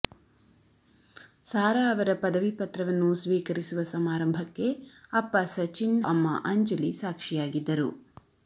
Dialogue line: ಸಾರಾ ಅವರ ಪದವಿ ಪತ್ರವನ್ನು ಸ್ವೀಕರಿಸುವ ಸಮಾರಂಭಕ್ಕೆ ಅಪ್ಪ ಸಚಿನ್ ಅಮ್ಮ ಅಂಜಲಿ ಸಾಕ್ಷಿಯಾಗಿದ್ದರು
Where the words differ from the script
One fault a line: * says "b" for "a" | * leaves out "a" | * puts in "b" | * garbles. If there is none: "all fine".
all fine